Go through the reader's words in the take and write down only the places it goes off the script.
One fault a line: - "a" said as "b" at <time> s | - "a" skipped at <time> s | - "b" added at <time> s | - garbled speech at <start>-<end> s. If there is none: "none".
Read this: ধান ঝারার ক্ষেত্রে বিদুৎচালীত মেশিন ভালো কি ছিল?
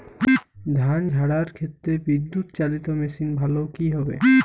- "ছিল" said as "হবে" at 3.9 s